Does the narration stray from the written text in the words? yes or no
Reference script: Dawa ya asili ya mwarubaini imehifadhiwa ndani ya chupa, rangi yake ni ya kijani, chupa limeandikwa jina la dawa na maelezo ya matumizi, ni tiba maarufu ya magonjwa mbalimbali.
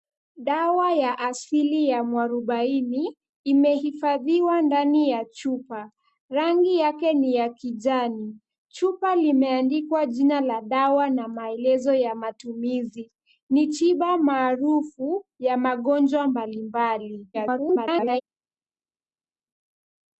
yes